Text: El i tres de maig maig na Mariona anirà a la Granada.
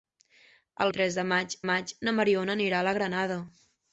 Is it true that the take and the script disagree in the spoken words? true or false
false